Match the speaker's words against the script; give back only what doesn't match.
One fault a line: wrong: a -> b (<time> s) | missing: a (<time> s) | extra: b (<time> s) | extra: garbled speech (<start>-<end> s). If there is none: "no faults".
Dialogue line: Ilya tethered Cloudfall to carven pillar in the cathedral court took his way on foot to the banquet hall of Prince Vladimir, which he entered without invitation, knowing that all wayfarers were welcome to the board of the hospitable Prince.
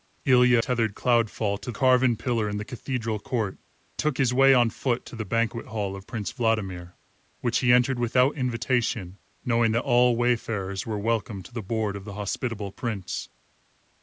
no faults